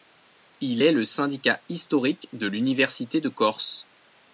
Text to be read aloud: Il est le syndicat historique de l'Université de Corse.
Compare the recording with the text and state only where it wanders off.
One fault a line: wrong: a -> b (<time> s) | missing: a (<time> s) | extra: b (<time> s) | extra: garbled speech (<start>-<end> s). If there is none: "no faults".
no faults